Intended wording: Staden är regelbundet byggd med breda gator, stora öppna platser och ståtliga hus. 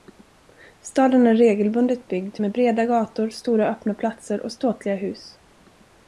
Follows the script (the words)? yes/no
yes